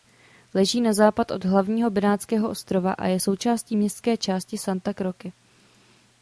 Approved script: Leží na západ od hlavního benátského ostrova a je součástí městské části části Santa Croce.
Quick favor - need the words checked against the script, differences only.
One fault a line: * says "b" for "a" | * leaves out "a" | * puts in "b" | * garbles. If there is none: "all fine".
* leaves out "části"